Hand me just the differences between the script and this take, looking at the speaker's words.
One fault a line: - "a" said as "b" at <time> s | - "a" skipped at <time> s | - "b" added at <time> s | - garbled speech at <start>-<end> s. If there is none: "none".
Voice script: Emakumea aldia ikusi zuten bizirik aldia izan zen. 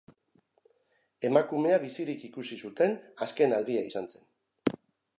- "aldia" said as "bizirik" at 1.9 s
- "bizirik" said as "azken" at 3.3 s